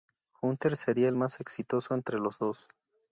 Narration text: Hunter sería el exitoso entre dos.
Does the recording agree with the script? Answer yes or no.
no